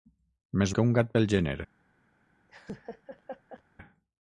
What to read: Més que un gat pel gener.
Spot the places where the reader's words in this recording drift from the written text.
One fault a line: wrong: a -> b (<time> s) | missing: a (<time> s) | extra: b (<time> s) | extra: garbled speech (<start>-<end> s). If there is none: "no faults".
no faults